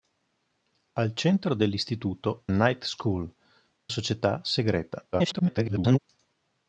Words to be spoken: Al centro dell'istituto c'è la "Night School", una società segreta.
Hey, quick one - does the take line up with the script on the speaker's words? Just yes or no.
no